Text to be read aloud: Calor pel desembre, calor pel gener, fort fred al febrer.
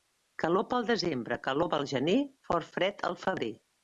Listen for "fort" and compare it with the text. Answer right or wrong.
right